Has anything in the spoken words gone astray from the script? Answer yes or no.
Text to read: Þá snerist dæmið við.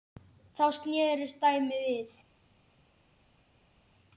no